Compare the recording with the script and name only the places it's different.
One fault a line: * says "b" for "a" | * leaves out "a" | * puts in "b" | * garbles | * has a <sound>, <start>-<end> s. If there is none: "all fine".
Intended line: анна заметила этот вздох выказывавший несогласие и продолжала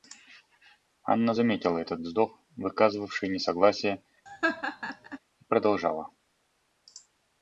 * has a laugh, 4.3-5.2 s